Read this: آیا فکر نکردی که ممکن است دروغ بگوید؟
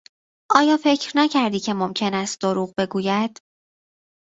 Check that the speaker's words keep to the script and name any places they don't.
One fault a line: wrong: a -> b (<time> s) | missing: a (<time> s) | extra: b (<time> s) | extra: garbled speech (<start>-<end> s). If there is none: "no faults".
no faults